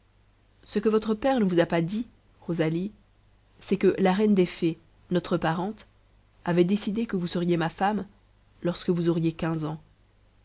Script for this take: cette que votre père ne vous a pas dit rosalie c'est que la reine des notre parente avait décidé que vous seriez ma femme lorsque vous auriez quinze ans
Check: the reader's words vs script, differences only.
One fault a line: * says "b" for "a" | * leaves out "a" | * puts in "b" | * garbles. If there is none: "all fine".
* says "ce" for "cette"
* puts in "fées"